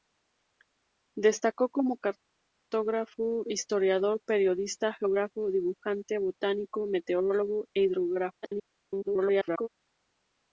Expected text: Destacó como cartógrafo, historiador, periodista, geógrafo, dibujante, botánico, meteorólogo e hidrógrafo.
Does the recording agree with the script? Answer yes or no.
no